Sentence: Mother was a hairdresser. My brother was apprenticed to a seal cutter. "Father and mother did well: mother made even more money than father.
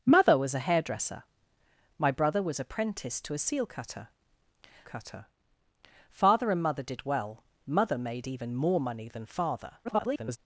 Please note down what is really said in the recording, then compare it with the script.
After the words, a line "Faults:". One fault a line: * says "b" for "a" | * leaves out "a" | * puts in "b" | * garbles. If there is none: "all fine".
Mother was a hairdresser. My brother was apprenticed to a seal cutter cutter. "Father and mother did well: mother made even more money than father. [garbled]
Faults:
* puts in "cutter"
* garbles